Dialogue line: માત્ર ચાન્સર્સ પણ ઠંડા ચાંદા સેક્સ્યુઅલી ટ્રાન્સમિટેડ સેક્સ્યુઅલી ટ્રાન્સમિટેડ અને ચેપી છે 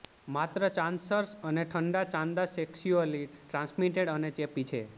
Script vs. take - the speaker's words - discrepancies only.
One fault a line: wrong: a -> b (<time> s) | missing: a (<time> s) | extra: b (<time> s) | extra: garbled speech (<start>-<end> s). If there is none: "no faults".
wrong: પણ -> અને (1.4 s)
missing: સેક્સ્યુઅલી ટ્રાન્સમિટેડ (4.1 s)